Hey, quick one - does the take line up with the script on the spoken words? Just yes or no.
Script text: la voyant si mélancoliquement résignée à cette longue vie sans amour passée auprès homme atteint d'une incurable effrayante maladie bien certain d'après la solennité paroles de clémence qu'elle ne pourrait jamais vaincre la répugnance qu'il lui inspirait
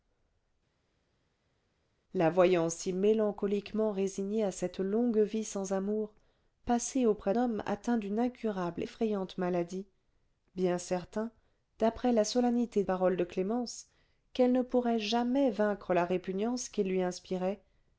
yes